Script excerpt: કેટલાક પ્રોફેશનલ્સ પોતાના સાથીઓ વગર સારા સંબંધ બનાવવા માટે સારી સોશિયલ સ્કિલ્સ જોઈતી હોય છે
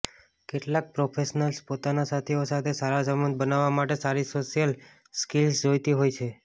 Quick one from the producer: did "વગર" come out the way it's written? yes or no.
no